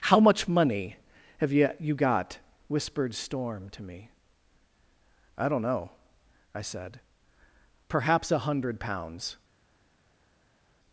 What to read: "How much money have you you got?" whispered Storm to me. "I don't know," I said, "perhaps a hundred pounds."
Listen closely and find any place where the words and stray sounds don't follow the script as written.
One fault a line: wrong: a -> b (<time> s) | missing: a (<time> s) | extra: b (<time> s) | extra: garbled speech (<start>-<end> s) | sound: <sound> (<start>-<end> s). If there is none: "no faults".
no faults